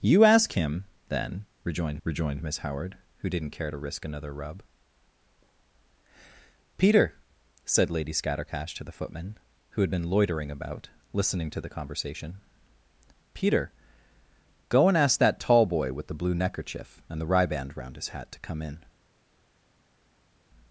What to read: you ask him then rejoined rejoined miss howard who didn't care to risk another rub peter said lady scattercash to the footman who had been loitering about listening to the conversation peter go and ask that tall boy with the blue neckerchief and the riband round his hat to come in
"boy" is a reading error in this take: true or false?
false